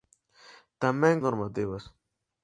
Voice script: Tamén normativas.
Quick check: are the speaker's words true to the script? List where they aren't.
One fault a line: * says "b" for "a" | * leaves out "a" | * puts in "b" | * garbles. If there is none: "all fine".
all fine